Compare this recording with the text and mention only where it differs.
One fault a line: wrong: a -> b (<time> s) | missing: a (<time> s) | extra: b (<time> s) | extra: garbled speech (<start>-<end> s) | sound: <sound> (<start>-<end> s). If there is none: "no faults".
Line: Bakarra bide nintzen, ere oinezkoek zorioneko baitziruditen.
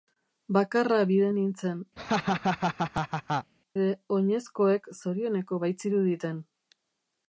sound: laugh (2.0-3.5 s)